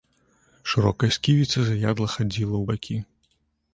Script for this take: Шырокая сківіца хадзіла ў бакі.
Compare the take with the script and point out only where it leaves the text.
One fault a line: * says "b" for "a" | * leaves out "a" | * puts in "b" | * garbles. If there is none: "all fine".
* puts in "заядла"